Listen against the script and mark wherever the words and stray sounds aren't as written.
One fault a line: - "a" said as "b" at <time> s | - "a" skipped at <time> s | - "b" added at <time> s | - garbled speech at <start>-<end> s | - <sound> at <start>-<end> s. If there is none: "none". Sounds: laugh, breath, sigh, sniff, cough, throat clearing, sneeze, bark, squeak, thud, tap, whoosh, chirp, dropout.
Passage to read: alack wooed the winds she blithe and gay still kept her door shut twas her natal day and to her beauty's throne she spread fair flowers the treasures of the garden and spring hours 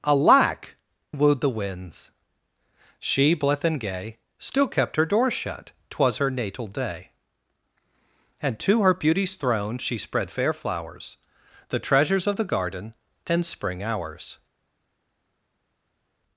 none